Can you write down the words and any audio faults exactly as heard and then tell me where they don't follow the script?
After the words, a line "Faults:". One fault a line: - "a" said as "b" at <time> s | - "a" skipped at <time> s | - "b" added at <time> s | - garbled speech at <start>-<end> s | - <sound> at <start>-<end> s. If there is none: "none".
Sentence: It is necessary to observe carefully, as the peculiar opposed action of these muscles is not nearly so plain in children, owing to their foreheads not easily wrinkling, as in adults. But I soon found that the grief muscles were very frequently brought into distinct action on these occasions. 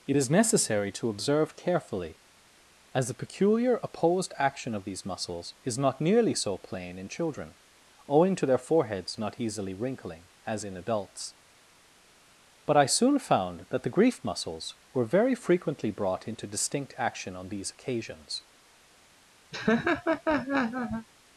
It is necessary to observe carefully, as the peculiar opposed action of these muscles is not nearly so plain in children, owing to their foreheads not easily wrinkling, as in adults. But I soon found that the grief muscles were very frequently brought into distinct action on these occasions.
Faults:
- laugh at 19.5-21.1 s